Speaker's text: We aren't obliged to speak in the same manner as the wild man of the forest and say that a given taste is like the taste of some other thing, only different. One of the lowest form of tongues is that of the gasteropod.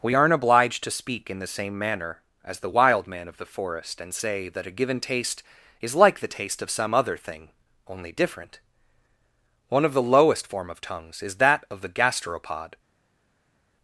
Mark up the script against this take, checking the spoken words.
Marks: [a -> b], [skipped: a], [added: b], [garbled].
We aren't obliged to speak in the same manner as the wild man of the forest and say that a given taste is like the taste of some other thing, only different. One of the lowest form of tongues is that of the gasteropod.